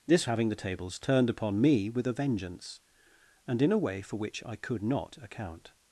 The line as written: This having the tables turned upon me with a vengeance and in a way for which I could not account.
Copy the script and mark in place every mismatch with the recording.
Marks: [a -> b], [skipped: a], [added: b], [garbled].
This having the tables turned upon me with a vengeance and in a way for which I could not account.